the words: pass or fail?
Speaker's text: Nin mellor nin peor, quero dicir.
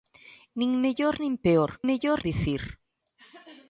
fail